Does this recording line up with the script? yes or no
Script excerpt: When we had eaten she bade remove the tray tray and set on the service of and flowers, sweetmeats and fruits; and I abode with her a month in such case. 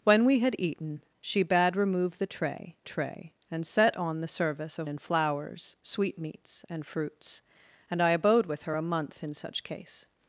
yes